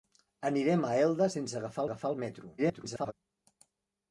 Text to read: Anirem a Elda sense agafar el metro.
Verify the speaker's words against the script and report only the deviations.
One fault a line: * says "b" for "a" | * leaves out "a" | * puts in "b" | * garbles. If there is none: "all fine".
* puts in "agafar"
* garbles